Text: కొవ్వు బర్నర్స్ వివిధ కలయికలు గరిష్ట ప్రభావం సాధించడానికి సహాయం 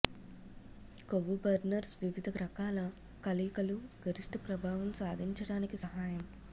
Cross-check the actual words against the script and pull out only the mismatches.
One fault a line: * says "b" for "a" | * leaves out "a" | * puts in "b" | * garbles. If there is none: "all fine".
* puts in "రకాల"